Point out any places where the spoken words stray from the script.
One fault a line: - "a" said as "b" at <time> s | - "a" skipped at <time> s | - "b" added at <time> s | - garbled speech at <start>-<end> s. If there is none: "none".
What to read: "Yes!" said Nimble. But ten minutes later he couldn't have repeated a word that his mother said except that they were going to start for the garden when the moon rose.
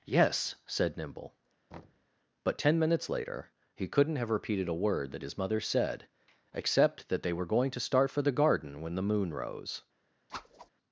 none